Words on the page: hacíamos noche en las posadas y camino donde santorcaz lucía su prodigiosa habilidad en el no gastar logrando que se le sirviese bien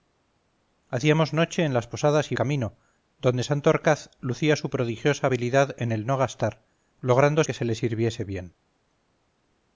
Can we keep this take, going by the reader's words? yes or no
yes